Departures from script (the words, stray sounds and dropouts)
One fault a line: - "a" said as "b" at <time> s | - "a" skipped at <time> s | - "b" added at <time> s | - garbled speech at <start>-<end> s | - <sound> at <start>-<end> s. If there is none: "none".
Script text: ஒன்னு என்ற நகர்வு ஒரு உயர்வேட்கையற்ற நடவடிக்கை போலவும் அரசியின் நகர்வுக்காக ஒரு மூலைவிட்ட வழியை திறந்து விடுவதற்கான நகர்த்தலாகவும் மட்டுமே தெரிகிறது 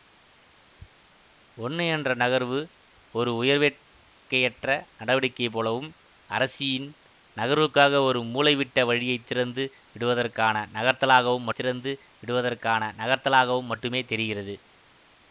- "திறந்து விடுவதற்கான நகர்த்தலாகவும்" added at 11.5 s